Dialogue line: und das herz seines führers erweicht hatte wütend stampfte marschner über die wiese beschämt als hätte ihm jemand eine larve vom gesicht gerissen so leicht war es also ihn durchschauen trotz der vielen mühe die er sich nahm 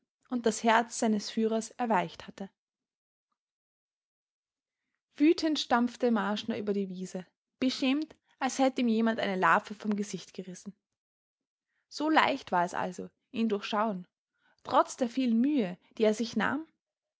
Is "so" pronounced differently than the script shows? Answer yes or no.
no